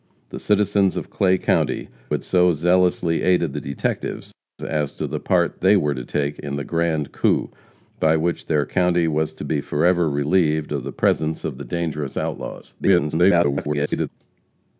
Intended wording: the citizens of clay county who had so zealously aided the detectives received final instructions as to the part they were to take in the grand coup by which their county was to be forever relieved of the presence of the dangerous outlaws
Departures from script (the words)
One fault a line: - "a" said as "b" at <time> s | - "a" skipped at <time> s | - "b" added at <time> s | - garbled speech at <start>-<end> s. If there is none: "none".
- "who" skipped at 1.9 s
- "received final instructions" skipped at 4.3 s
- garbled speech at 12.8-14.1 s